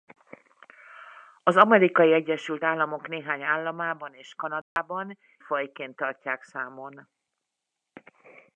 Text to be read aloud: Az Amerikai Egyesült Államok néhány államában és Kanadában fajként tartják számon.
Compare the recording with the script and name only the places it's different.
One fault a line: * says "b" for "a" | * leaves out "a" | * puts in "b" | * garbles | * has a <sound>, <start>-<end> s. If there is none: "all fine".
* has a dropout, 4.6-4.8 s